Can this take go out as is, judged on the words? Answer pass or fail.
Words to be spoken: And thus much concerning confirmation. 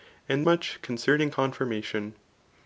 fail